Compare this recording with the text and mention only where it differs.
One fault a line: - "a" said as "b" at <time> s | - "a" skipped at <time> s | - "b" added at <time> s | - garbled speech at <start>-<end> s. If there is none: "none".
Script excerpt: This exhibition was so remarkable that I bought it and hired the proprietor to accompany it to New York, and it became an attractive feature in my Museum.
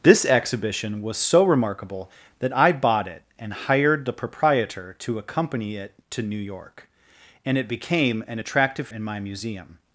- "feature" skipped at 8.9 s